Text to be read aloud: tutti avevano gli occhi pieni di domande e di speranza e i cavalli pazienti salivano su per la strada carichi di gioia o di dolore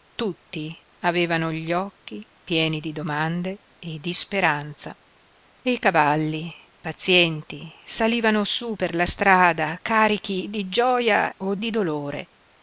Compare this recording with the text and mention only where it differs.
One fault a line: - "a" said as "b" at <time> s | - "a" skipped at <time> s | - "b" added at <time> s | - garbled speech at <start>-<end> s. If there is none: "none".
none